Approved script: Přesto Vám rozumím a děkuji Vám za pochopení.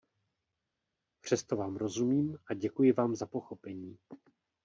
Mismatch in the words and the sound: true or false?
false